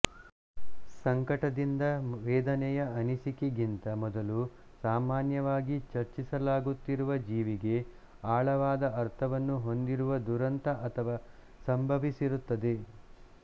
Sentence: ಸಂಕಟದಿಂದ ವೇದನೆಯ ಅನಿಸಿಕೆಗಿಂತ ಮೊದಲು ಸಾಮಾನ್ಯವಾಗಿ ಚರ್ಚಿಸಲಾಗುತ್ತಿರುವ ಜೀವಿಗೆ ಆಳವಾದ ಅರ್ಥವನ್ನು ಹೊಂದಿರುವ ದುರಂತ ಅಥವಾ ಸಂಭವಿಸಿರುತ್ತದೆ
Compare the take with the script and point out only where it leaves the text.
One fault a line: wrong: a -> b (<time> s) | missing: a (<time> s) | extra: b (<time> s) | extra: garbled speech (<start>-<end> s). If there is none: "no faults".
no faults